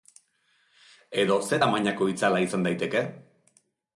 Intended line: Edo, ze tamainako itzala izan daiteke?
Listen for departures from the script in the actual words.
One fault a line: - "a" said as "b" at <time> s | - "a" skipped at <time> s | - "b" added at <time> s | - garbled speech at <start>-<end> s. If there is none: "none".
none